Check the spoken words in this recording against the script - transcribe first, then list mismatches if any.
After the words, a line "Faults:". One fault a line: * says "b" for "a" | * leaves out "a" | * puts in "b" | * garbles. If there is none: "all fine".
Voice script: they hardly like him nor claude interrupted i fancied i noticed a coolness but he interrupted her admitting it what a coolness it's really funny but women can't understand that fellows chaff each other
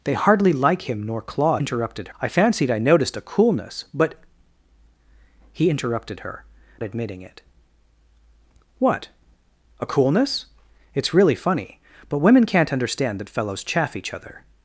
they hardly like him nor claude interrupted i fancied i noticed a coolness but he interrupted her admitting it what a coolness it's really funny but women can't understand that fellows chaff each other
Faults:
all fine